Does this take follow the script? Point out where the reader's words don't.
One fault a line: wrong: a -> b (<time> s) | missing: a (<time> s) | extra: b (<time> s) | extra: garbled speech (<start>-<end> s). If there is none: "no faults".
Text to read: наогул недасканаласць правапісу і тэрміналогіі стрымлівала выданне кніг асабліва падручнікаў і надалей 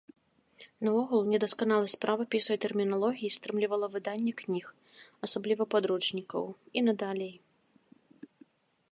no faults